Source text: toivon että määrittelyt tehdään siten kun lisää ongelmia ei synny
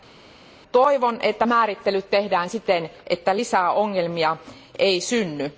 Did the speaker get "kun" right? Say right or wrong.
wrong